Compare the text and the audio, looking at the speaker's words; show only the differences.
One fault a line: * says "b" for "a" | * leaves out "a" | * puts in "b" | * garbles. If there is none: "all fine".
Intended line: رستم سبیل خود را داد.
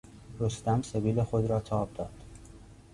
* puts in "تاب"